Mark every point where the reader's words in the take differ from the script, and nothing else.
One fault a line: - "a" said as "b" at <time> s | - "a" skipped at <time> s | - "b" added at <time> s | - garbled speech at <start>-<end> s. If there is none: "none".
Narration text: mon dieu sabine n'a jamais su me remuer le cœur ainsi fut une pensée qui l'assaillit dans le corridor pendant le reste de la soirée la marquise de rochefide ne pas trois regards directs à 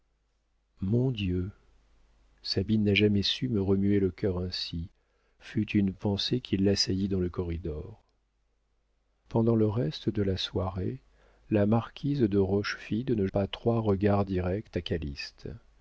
none